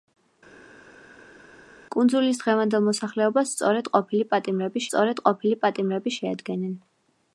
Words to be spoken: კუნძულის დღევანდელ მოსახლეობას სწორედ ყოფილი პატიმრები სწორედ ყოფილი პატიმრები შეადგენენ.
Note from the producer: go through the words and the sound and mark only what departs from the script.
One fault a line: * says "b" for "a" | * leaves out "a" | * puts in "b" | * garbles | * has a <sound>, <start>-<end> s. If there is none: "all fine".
all fine